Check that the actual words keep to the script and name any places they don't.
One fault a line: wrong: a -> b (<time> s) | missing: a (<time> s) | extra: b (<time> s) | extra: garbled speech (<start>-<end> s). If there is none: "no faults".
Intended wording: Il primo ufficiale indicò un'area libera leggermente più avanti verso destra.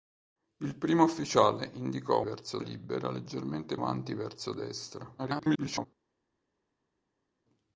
wrong: un'area -> verso (2.2 s)
missing: più (3.8 s)
extra: garbled speech (5.2-5.9 s)